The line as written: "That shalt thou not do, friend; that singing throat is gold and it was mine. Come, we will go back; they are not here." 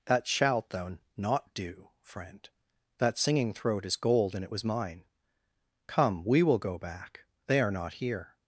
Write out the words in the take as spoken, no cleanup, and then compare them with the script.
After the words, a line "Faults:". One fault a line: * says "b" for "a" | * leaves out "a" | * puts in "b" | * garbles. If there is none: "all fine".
"That shalt thou not do, friend; that singing throat is gold and it was mine. Come, we will go back; they are not here."
Faults:
all fine